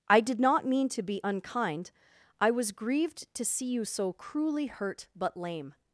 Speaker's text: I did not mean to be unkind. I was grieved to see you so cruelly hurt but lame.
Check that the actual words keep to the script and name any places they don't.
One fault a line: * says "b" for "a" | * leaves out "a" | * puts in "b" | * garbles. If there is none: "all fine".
all fine